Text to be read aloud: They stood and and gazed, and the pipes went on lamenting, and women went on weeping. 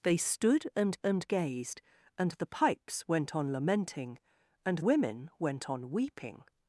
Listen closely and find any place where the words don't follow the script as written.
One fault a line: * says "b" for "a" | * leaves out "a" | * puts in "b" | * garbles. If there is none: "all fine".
all fine